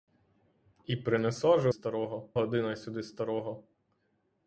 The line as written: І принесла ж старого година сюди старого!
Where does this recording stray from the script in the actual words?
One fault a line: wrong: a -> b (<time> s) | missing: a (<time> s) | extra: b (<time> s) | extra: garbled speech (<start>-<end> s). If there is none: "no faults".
no faults